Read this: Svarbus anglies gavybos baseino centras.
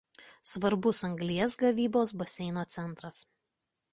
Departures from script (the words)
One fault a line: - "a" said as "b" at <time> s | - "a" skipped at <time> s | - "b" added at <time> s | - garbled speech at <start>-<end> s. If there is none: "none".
none